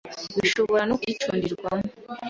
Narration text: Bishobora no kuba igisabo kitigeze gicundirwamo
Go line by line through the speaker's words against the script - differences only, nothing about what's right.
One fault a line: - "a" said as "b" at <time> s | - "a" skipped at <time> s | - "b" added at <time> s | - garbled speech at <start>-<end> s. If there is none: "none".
- "kuba igisabo kitigeze" skipped at 1.0 s